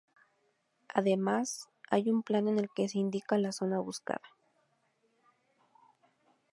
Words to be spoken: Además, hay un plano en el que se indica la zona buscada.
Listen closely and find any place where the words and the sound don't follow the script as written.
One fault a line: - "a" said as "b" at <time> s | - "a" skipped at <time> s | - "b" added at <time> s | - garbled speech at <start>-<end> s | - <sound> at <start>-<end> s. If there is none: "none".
none